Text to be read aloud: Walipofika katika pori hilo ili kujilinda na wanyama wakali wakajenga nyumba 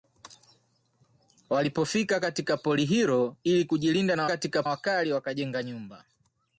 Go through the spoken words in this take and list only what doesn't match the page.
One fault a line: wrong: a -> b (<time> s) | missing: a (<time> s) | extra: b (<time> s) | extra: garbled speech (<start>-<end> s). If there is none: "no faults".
wrong: wanyama -> katika (4.2 s)